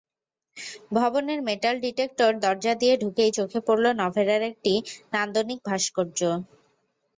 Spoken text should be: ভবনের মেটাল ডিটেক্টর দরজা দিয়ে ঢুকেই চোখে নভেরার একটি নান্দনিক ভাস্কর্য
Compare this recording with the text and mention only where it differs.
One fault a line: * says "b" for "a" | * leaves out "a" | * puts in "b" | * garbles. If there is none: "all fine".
* puts in "পড়ল"